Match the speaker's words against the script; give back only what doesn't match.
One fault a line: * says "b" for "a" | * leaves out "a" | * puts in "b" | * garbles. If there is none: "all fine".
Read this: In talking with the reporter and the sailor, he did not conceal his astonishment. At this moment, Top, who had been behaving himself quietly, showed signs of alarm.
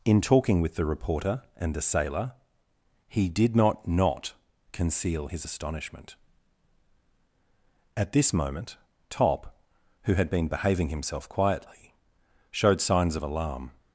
* puts in "not"